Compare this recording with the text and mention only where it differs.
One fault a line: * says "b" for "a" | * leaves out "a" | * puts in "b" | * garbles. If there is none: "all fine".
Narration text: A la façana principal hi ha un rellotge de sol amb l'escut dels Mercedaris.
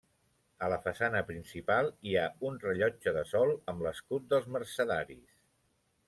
all fine